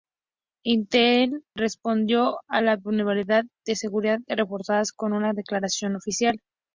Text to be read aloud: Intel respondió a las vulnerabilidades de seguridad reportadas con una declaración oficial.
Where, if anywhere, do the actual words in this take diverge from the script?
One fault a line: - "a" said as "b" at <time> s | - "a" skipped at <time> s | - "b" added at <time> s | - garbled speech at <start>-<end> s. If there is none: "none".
none